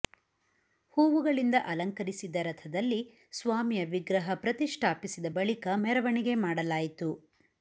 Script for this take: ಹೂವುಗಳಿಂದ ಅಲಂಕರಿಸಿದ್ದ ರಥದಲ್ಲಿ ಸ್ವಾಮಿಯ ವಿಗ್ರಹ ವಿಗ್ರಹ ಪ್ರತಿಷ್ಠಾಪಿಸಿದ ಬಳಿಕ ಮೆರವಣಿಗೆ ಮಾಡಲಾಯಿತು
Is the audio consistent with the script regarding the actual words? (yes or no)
no